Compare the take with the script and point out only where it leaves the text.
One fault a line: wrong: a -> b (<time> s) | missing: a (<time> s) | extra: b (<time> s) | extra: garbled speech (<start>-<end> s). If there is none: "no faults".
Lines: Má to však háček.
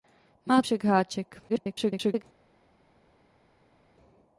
missing: to (0.6 s)
extra: garbled speech (1.5-2.2 s)